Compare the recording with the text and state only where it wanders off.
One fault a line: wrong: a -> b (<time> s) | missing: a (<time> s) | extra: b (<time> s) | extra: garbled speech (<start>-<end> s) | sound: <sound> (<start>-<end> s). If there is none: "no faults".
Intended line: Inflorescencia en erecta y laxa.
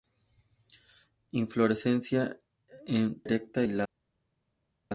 no faults